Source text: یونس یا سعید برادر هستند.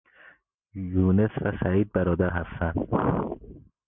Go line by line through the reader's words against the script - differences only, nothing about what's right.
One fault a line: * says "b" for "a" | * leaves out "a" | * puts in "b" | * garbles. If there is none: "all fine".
* says "و" for "یا"